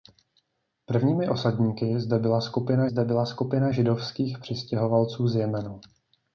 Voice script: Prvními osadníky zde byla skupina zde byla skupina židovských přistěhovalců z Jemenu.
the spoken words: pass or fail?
pass